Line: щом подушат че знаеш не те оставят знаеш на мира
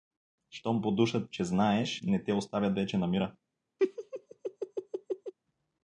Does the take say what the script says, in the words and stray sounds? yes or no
no